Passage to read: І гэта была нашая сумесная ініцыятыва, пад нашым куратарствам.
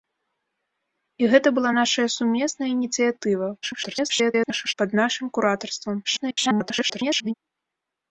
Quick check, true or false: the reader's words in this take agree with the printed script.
false